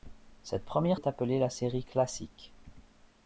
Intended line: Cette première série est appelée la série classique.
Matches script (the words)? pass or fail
fail